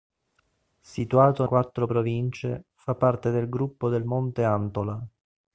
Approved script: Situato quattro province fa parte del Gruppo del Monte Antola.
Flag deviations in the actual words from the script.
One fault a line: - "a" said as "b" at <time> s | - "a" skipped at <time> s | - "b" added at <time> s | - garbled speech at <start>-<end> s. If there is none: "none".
none